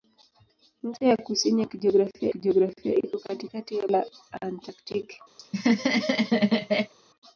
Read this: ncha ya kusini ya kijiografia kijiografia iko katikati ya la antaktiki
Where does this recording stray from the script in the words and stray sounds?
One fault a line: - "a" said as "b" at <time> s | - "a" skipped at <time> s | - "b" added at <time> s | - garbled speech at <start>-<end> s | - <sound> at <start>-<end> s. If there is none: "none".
- laugh at 5.4-6.9 s